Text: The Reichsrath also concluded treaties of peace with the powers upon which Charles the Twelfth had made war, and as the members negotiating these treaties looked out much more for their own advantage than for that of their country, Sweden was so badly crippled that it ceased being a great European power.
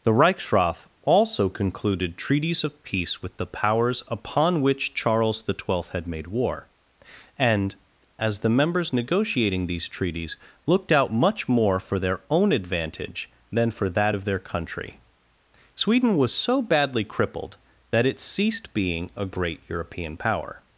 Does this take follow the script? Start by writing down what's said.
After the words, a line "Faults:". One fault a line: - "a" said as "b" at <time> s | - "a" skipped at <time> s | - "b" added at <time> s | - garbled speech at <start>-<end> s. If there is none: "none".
The Reichsrath also concluded treaties of peace with the powers upon which Charles the Twelfth had made war, and as the members negotiating these treaties looked out much more for their own advantage than for that of their country, Sweden was so badly crippled that it ceased being a great European power.
Faults:
none